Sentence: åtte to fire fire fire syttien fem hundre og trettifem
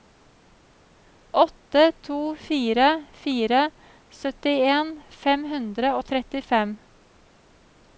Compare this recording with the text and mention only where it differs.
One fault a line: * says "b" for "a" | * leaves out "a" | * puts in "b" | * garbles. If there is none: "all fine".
* leaves out "fire"